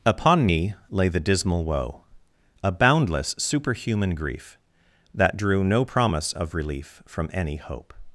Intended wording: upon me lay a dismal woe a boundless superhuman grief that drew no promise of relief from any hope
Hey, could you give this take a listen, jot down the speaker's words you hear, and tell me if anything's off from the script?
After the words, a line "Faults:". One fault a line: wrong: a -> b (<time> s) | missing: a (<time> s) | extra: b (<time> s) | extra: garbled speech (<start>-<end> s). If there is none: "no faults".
upon me lay the dismal woe a boundless superhuman grief that drew no promise of relief from any hope
Faults:
wrong: a -> the (1.1 s)